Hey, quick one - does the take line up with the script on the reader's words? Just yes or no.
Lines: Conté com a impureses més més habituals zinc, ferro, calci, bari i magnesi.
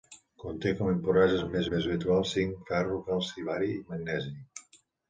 yes